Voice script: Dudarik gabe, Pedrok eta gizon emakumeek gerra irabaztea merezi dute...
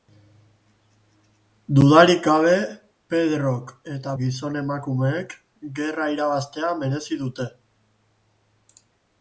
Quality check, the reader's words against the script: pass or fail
pass